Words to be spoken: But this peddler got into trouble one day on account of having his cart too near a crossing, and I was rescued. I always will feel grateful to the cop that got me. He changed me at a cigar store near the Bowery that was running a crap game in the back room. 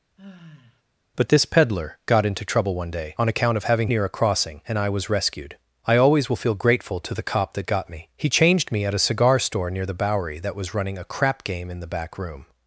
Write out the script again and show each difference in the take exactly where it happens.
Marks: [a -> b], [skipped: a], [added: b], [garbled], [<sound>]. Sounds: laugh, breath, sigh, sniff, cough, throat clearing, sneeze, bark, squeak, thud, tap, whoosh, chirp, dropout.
[sigh] But this peddler got into trouble one day on account of having [skipped: his cart too] near a crossing, and I was rescued. I always will feel grateful to the cop that got me. He changed me at a cigar store near the Bowery that was running a crap game in the back room.